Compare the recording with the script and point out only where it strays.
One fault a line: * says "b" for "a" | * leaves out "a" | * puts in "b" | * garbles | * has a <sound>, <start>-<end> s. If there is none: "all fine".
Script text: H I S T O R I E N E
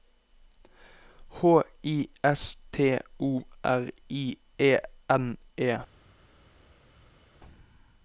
all fine